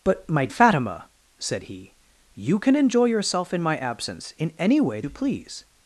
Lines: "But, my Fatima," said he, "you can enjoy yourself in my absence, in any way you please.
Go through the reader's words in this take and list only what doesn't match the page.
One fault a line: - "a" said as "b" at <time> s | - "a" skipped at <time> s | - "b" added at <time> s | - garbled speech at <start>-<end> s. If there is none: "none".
none